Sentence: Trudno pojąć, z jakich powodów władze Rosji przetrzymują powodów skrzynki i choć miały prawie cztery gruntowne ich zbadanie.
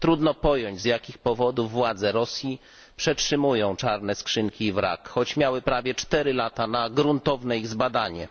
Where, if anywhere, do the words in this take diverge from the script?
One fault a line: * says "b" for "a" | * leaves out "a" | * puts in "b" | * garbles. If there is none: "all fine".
* says "czarne" for "powodów"
* puts in "wrak"
* puts in "lata na"